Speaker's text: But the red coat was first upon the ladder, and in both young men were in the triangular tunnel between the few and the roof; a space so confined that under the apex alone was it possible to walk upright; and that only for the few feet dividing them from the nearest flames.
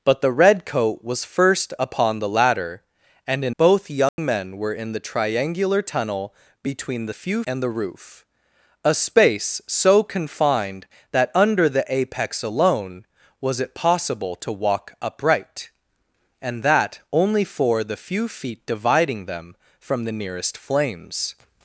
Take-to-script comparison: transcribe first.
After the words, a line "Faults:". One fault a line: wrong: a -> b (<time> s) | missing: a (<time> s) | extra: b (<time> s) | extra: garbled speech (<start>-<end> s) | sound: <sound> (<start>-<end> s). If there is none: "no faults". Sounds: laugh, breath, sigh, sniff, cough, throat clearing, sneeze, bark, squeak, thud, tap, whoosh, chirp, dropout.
But the red coat was first upon the ladder, and in both young men were in the triangular tunnel between the few and the roof; a space so confined that under the apex alone was it possible to walk upright; and that only for the few feet dividing them from the nearest flames.
Faults:
sound: dropout (4.1-4.2 s)